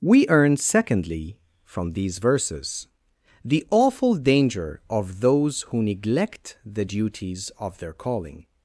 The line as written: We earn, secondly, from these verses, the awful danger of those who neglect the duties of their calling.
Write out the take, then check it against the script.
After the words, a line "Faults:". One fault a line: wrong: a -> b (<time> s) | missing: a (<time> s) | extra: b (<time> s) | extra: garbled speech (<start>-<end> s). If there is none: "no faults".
We earn, secondly, from these verses, the awful danger of those who neglect the duties of their calling.
Faults:
no faults